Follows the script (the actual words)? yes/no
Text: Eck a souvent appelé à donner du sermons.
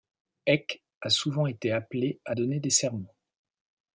no